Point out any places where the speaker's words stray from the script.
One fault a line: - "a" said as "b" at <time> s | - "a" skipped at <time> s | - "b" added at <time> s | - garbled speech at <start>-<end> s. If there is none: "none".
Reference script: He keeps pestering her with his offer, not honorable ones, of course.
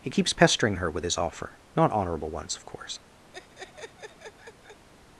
none